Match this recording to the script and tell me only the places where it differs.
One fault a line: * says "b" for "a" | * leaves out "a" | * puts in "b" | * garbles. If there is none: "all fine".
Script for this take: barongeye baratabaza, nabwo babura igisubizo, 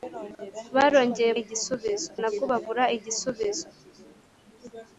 * says "igisubizo" for "baratabaza"